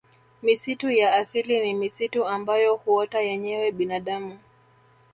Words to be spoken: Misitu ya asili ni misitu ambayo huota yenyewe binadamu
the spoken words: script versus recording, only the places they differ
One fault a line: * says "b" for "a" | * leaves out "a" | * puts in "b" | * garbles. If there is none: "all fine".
all fine